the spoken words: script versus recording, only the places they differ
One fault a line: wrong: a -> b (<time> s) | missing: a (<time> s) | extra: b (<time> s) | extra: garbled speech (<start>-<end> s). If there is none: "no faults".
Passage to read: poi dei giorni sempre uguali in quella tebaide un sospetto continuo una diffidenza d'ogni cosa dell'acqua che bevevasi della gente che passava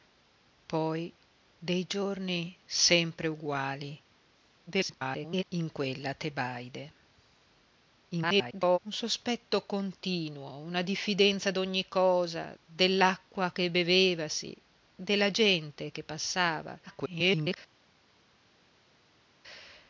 extra: garbled speech (4.7-5.4 s)
extra: garbled speech (8.1-8.8 s)
extra: garbled speech (16.9-17.6 s)